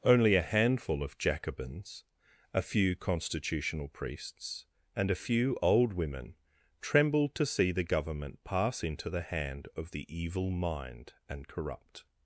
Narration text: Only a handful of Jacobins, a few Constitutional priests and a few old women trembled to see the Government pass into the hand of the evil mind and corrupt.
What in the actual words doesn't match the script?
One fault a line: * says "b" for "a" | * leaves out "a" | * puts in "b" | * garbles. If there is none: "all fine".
all fine